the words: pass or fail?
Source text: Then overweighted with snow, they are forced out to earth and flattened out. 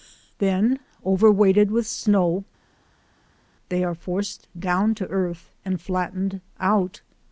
fail